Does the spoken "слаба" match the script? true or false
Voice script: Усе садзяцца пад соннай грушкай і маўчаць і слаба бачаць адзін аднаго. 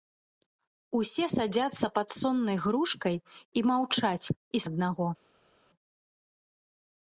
false